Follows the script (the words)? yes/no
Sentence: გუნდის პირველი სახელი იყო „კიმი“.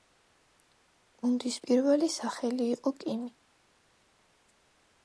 yes